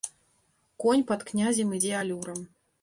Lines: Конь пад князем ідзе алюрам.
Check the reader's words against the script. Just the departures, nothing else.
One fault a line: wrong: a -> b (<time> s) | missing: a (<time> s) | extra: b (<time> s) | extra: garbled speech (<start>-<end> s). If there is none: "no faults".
no faults